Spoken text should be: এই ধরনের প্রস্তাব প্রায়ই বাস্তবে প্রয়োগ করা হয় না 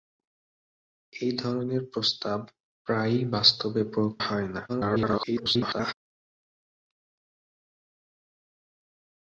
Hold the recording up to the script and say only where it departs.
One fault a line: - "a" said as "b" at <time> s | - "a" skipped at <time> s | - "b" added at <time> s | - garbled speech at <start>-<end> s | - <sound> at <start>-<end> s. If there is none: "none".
- "করা" skipped at 4.1 s
- garbled speech at 4.7-5.9 s